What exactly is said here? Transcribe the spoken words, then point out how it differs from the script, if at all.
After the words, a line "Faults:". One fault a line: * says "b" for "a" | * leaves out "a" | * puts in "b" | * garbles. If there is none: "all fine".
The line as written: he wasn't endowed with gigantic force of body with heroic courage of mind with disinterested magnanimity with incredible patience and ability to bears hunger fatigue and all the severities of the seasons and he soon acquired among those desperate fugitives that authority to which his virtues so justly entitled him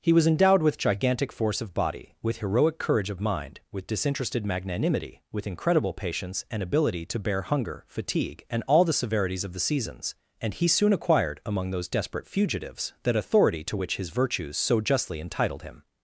he was endowed with gigantic force of body with heroic courage of mind with disinterested magnanimity with incredible patience and ability to bear hunger fatigue and all the severities of the seasons and he soon acquired among those desperate fugitives that authority to which his virtues so justly entitled him
Faults:
* says "was" for "wasn't"
* says "bear" for "bears"